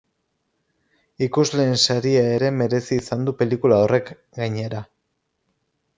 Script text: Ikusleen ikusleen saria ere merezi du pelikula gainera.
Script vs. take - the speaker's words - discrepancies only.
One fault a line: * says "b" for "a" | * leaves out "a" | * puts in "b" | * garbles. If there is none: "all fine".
* leaves out "ikusleen"
* puts in "izan"
* puts in "horrek"